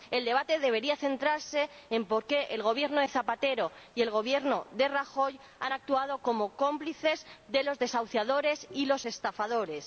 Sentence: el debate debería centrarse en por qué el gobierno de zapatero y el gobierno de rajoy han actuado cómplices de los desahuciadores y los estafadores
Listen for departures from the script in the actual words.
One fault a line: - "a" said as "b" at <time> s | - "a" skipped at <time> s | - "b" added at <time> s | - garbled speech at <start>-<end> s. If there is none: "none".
- "como" added at 6.2 s